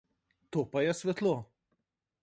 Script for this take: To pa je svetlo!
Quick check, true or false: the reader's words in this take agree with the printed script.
true